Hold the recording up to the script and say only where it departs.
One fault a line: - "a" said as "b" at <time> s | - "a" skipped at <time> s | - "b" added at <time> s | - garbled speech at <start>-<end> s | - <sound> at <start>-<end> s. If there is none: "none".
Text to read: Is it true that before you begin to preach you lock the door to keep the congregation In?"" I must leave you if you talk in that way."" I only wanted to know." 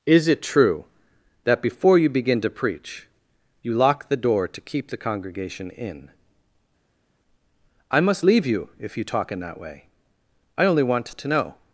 - "wanted" said as "want" at 10.8 s